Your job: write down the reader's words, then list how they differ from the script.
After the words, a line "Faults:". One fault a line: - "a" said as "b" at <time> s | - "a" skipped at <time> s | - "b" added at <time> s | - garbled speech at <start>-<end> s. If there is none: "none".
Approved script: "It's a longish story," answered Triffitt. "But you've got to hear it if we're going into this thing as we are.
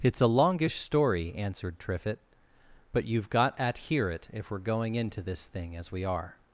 "It's a longish story," answered Triffitt. "But you've got at hear it if we're going into this thing as we are.
Faults:
- "to" said as "at" at 3.6 s